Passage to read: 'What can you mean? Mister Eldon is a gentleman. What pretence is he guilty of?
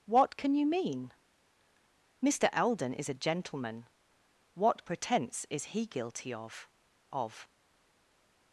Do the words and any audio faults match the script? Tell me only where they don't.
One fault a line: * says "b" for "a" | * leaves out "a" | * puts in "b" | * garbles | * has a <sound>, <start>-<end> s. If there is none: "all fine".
* puts in "of"